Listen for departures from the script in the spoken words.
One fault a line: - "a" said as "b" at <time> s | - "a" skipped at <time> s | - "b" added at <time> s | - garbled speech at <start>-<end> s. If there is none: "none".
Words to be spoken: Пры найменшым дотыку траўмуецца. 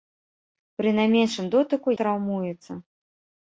none